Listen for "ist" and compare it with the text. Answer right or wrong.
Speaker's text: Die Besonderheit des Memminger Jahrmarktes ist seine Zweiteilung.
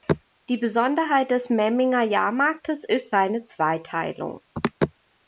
right